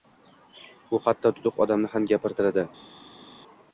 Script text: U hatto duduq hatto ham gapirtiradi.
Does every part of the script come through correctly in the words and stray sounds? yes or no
no